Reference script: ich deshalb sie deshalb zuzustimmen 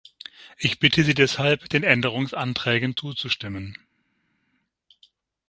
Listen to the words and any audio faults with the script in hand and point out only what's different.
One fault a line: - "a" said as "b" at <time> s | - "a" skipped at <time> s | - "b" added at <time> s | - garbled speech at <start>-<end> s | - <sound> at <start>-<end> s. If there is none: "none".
- "deshalb" said as "bitte" at 0.8 s
- "den änderungsanträgen" added at 1.7 s